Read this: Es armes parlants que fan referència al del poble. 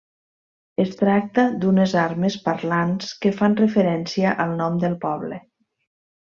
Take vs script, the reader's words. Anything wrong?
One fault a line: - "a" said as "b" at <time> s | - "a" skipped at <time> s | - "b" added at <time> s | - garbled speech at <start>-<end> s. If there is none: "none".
- "tracta d'unes" added at 1.0 s
- "nom" added at 4.6 s